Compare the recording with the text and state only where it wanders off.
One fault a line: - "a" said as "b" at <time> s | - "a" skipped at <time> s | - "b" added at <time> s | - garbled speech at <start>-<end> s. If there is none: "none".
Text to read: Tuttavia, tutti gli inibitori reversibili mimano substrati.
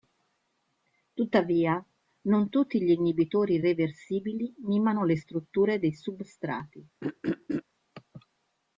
- "non" added at 2.2 s
- "le strutture dei" added at 5.0 s